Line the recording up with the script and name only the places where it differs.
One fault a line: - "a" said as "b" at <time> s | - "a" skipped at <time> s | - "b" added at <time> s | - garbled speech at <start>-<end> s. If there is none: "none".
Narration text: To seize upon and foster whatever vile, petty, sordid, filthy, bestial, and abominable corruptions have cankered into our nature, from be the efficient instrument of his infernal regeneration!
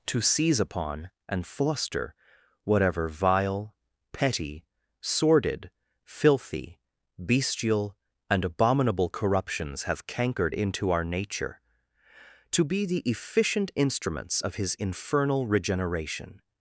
- "from" said as "to" at 12.5 s
- "instrument" said as "instruments" at 13.7 s